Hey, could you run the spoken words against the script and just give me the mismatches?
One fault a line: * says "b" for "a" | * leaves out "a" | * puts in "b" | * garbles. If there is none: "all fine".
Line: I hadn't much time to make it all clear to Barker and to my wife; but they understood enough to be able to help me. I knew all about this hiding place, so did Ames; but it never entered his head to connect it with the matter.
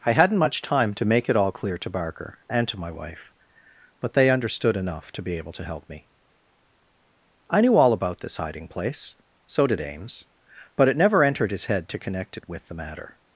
all fine